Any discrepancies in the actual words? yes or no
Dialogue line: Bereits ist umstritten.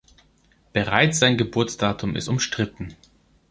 yes